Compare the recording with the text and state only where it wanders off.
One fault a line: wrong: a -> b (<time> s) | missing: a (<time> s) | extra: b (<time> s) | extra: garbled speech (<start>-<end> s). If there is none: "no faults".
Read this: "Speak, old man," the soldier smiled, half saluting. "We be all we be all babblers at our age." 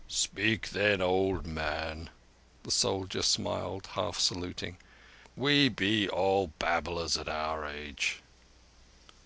extra: then (0.7 s)
missing: we be all (6.5 s)